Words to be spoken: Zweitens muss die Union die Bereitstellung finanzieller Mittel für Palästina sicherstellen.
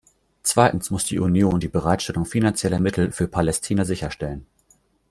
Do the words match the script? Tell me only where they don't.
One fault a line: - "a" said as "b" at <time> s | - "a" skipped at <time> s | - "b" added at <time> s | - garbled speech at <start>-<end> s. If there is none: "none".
none